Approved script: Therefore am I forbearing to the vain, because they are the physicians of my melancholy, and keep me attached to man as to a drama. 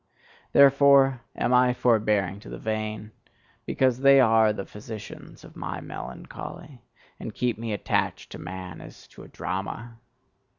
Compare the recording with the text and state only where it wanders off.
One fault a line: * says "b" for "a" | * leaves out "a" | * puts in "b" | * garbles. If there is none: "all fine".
all fine